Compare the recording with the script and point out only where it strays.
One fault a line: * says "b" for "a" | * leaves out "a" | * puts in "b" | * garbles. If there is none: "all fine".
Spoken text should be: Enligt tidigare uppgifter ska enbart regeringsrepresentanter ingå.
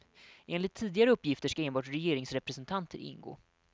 all fine